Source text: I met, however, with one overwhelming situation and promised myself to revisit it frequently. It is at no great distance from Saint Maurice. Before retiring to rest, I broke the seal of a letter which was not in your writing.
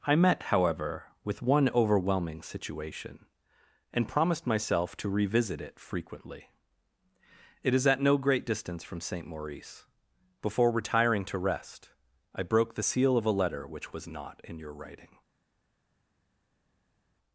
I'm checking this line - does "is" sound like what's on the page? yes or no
yes